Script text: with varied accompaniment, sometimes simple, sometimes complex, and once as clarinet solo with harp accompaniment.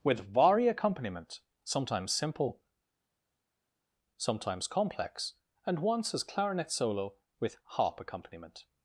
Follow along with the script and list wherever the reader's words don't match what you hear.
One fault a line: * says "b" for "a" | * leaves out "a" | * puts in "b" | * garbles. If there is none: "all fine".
* says "vari" for "varied"